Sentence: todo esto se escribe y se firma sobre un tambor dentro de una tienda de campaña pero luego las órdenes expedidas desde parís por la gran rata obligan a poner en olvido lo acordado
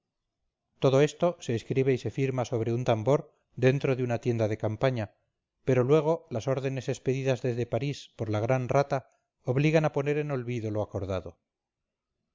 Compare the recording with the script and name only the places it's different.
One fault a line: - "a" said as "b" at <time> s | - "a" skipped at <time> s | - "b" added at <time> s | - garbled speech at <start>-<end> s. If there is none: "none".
none